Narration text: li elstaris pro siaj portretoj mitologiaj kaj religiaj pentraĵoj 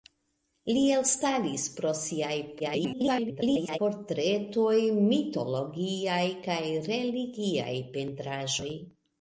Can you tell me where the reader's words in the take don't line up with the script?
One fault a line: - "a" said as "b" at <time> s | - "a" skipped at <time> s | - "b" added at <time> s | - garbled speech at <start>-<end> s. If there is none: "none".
- garbled speech at 2.6-3.8 s